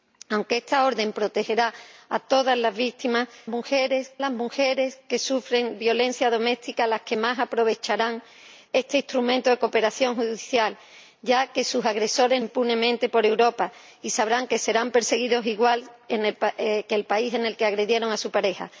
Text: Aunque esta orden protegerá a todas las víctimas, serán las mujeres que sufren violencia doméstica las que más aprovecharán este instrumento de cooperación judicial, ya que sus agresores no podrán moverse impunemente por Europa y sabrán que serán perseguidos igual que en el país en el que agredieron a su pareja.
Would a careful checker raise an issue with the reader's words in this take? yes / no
yes